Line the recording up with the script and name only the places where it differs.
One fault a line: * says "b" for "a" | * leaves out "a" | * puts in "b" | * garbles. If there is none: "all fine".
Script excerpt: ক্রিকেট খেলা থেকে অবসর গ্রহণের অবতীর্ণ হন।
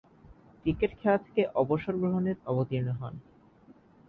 all fine